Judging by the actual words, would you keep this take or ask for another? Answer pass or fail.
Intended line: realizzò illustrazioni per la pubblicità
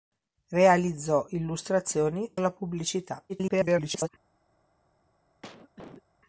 fail